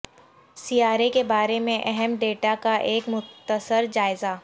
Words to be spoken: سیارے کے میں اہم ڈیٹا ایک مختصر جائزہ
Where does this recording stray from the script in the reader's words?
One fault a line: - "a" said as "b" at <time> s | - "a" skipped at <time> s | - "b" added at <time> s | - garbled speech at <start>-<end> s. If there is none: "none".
- "بارے" added at 1.2 s
- "کا" added at 2.6 s